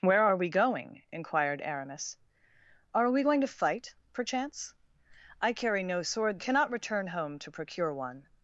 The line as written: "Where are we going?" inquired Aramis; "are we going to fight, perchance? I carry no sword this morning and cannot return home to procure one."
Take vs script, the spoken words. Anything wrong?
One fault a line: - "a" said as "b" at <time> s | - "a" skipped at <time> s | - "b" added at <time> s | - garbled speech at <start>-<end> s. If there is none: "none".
- "this morning and" skipped at 6.4 s